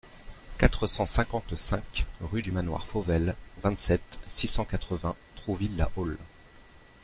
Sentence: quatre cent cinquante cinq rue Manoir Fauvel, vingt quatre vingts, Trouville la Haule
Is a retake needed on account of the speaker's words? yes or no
yes